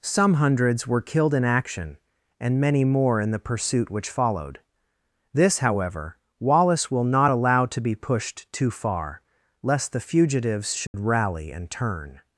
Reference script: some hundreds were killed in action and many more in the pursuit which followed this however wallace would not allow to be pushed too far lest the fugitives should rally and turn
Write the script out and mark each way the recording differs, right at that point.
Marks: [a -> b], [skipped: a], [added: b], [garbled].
some hundreds were killed in action and many more in the pursuit which followed this however wallace [would -> will] not allow to be pushed too far lest the fugitives should rally and turn